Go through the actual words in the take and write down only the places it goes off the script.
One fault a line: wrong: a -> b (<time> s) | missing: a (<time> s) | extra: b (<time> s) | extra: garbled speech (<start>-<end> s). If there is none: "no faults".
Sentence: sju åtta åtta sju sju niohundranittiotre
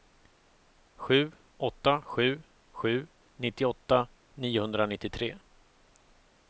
wrong: åtta -> sju (2.0 s)
wrong: sju -> nittioåtta (3.4 s)